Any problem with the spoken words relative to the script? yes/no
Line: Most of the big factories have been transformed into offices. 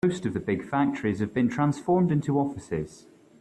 no